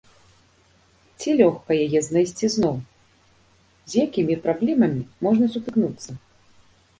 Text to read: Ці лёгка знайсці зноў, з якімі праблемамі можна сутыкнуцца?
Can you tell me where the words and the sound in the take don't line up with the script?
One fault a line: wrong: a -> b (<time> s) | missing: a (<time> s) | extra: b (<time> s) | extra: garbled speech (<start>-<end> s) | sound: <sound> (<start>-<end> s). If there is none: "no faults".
extra: яе (1.9 s)